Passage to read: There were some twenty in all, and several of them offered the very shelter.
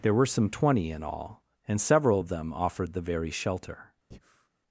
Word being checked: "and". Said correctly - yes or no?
yes